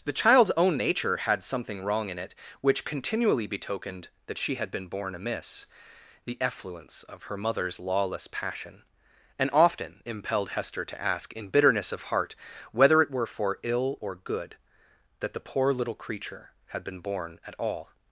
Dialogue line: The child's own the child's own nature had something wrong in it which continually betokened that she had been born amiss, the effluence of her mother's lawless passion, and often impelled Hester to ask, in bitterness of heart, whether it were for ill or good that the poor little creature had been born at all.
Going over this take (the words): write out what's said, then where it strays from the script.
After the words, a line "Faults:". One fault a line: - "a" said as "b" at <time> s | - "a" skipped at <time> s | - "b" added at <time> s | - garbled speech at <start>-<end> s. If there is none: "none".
The child's own nature had something wrong in it which continually betokened that she had been born amiss, the effluence of her mother's lawless passion, and often impelled Hester to ask, in bitterness of heart, whether it were for ill or good that the poor little creature had been born at all.
Faults:
- "the child's own" skipped at 0.8 s